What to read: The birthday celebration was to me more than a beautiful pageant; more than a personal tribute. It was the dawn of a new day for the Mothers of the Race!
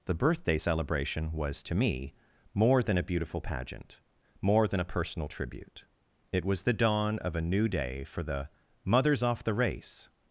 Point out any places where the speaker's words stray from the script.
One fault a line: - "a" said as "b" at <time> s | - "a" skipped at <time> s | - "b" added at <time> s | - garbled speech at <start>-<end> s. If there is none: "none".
- "of" said as "off" at 9.2 s